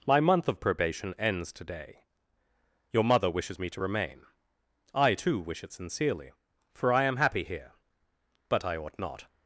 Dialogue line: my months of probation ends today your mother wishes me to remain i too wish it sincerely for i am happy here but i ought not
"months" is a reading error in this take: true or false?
true